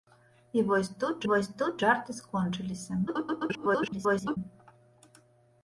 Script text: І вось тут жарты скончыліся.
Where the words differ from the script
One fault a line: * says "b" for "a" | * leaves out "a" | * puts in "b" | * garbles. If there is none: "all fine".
* puts in "вось тут"
* garbles